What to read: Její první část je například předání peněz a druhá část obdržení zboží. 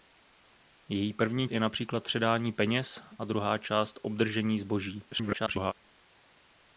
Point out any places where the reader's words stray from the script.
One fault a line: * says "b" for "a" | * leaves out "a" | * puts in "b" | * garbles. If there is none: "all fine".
* leaves out "část"
* garbles